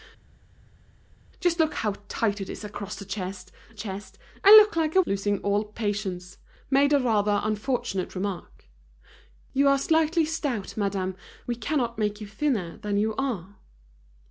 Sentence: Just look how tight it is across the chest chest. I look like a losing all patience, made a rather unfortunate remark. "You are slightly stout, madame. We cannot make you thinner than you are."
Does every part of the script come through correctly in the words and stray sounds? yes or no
yes